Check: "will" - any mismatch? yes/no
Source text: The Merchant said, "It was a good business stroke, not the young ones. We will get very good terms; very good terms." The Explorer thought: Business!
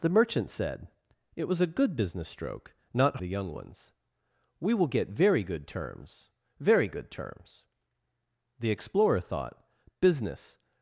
no